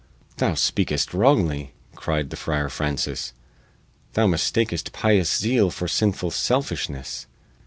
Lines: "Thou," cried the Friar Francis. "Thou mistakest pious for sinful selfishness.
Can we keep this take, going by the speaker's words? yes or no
no